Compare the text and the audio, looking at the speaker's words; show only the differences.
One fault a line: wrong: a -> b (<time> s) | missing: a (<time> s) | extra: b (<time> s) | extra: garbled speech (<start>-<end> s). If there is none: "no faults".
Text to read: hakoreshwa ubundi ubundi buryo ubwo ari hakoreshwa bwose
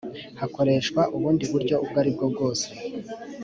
missing: ubundi (1.4 s)
wrong: hakoreshwa -> bwo (2.2 s)